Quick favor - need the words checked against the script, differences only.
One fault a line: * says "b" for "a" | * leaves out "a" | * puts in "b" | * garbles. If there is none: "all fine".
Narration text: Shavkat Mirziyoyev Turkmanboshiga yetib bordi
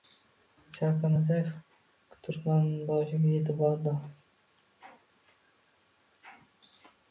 all fine